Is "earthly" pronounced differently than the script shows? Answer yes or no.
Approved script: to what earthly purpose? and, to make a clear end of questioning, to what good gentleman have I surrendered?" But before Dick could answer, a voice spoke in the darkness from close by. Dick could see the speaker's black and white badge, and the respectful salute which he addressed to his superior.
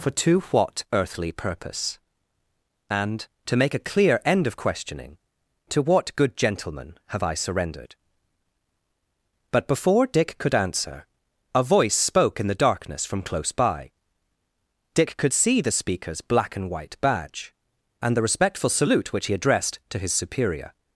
no